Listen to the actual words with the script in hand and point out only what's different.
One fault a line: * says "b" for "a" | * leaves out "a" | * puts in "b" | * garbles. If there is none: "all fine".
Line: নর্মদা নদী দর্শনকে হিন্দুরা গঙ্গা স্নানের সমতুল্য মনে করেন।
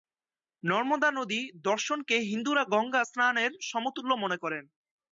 all fine